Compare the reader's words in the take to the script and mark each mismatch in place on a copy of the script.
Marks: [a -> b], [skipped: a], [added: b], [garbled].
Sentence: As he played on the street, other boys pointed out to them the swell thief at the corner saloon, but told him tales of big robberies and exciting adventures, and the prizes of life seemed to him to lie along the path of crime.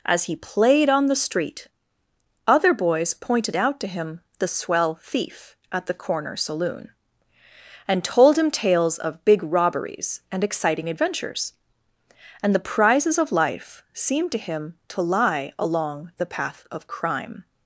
As he played on the street, other boys pointed out to [them -> him] the swell thief at the corner saloon, [but -> and] told him tales of big robberies and exciting adventures, and the prizes of life seemed to him to lie along the path of crime.